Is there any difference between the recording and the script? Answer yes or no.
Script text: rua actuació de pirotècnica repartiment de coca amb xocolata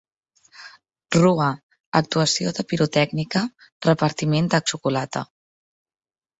yes